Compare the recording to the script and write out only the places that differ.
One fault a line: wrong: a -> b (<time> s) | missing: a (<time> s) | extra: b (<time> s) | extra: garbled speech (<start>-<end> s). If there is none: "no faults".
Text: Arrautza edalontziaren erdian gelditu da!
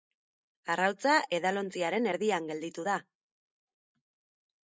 no faults